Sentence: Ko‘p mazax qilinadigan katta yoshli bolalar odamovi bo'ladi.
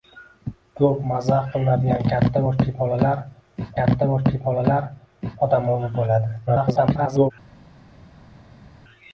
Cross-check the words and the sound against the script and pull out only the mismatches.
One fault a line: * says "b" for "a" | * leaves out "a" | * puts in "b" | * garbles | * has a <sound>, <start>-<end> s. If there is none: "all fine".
* puts in "katta yoshli bolalar"
* garbles